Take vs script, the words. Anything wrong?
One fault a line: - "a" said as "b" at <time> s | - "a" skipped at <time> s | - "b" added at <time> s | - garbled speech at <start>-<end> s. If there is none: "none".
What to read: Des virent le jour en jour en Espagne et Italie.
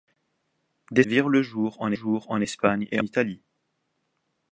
none